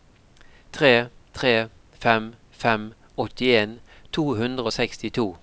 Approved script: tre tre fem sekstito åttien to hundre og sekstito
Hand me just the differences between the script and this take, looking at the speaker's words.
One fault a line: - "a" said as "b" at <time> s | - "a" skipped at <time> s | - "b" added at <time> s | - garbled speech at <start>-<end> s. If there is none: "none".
- "sekstito" said as "fem" at 2.6 s